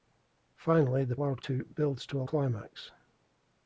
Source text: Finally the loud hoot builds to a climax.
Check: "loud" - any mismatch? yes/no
no